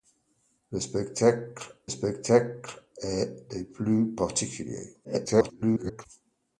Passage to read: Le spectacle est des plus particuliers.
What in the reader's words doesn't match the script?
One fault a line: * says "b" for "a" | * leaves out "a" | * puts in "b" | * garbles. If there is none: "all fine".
* puts in "spectacle"
* garbles